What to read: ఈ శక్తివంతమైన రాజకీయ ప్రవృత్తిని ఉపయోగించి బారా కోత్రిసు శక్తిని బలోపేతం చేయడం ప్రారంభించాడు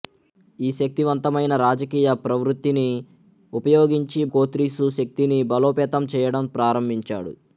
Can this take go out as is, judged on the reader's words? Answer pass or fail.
fail